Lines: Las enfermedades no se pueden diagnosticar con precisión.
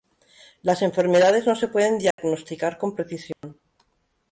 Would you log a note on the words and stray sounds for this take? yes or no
yes